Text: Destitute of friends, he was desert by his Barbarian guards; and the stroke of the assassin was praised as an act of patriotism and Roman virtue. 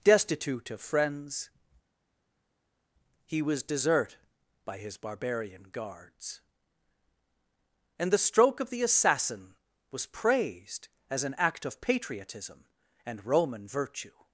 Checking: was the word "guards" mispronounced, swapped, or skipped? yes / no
no